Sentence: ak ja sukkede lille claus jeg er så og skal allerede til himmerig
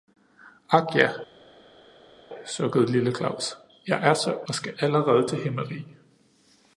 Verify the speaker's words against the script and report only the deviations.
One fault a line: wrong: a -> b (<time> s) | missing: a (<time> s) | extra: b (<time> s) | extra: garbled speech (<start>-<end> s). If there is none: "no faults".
no faults